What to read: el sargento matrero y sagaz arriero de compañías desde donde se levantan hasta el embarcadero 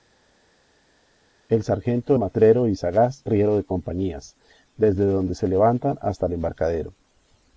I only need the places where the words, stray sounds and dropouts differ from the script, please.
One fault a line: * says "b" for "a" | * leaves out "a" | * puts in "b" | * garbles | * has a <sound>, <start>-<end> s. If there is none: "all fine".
all fine